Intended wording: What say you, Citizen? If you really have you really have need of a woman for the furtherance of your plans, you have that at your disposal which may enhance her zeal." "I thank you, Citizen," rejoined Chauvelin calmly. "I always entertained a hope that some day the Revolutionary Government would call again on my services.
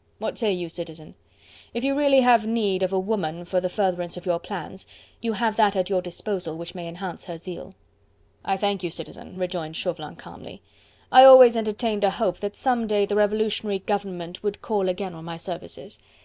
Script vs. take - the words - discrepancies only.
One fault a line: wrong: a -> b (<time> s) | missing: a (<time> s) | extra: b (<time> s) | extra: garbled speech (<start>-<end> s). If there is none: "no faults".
missing: you really have (2.4 s)